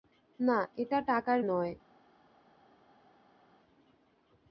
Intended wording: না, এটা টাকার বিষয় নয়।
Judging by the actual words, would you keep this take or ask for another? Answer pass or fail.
fail